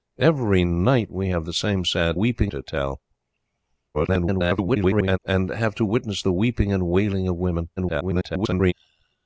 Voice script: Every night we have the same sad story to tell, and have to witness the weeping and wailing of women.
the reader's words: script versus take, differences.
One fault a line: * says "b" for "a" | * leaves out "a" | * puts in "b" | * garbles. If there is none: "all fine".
* says "weeping" for "story"
* garbles
* garbles